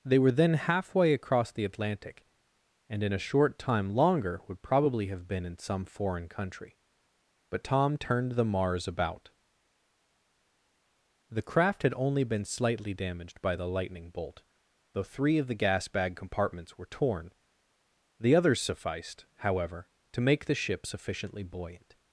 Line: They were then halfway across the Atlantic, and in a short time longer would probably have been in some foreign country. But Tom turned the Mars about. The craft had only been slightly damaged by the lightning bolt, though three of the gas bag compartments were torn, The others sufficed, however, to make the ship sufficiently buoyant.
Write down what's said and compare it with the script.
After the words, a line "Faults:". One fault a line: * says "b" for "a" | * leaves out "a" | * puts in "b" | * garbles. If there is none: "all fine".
They were then halfway across the Atlantic, and in a short time longer would probably have been in some foreign country. But Tom turned the Mars about. The craft had only been slightly damaged by the lightning bolt, though three of the gas bag compartments were torn, The others sufficed, however, to make the ship sufficiently buoyant.
Faults:
all fine